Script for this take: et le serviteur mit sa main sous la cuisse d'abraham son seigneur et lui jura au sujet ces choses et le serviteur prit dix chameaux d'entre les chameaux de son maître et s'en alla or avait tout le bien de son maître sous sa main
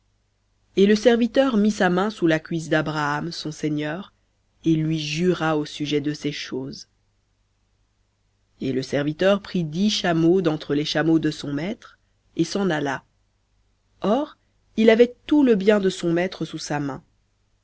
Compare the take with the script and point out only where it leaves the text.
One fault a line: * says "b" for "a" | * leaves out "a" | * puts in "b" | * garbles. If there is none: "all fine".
* puts in "de"
* puts in "il"